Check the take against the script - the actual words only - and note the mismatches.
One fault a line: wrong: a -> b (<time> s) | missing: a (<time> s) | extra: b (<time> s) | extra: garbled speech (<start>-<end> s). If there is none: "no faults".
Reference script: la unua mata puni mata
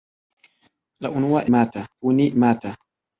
no faults